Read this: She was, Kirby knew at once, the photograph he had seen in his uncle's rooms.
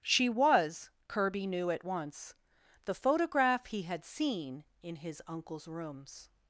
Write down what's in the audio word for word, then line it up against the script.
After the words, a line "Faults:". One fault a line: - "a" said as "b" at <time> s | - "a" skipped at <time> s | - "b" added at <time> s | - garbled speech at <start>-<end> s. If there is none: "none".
She was, Kirby knew at once, the photograph he had seen in his uncle's rooms.
Faults:
none